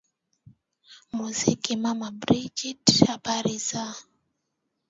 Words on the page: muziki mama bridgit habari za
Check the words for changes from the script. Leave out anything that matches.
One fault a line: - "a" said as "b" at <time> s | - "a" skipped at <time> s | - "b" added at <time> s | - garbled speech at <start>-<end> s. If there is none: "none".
none